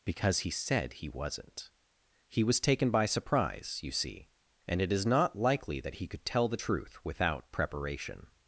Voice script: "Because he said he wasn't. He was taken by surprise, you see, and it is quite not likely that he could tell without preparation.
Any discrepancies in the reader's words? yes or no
yes